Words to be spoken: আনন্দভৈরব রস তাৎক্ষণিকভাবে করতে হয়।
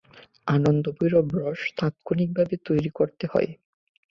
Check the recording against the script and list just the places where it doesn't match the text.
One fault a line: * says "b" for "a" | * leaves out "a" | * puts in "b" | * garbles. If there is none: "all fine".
* puts in "তৈরি"